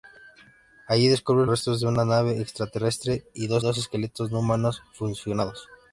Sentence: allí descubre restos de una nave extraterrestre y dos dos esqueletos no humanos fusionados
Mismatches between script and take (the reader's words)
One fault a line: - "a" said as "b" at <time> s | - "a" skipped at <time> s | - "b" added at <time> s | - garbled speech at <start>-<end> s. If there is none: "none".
none